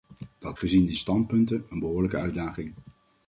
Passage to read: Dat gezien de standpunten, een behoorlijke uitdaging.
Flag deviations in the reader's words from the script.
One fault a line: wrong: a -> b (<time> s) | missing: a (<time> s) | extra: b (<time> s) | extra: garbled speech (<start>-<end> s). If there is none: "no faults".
no faults